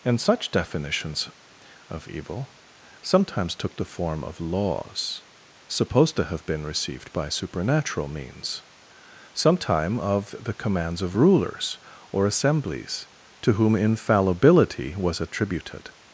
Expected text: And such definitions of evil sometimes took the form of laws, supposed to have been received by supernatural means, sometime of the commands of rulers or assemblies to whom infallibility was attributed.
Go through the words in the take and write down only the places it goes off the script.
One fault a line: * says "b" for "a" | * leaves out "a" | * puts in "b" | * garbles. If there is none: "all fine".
all fine